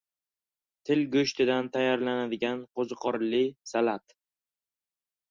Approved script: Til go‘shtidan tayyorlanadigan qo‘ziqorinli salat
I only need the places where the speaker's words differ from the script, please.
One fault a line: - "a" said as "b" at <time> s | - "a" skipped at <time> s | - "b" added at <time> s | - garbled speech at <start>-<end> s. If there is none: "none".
none